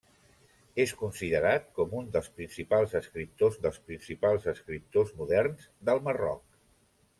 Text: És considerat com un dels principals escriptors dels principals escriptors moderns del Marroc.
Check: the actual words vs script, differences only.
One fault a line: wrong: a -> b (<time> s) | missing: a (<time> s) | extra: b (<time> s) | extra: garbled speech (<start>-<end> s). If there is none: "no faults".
no faults